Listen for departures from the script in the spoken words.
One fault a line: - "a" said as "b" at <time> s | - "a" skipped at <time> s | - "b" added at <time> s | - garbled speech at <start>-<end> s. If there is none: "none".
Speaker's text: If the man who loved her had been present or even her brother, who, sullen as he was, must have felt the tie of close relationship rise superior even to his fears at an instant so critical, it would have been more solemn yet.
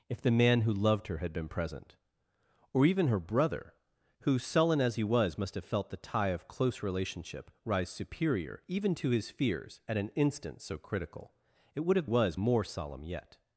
- "been" said as "was" at 12.0 s